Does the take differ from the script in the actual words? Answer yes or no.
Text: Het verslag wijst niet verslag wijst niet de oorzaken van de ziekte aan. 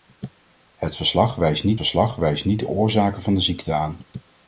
no